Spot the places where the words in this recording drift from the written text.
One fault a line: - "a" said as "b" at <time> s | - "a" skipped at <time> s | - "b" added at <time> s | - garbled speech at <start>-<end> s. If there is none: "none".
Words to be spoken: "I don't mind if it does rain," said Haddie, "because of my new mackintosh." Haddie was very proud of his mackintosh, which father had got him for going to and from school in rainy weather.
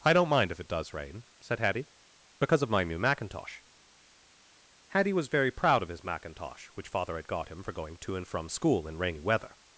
none